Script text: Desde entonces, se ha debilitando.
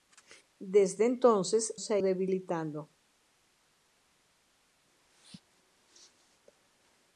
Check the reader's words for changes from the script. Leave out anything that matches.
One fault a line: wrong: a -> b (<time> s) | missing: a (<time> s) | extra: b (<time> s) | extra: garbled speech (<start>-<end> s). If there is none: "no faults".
no faults